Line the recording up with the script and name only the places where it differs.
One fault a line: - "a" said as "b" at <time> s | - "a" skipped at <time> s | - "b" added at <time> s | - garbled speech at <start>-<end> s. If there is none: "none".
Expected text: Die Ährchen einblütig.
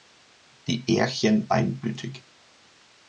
none